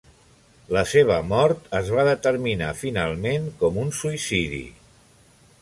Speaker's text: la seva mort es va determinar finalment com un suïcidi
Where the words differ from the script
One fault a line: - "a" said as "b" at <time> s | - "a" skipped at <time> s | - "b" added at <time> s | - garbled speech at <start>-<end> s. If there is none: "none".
none